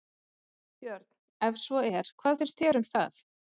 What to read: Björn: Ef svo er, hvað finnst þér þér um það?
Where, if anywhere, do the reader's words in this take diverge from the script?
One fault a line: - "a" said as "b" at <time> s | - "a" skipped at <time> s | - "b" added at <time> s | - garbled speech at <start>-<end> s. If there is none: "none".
- "þér" skipped at 2.8 s